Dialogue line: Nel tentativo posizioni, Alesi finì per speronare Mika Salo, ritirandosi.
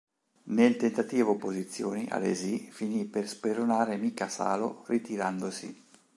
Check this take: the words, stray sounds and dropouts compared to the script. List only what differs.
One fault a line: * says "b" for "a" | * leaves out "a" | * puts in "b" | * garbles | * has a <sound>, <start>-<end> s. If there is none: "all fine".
all fine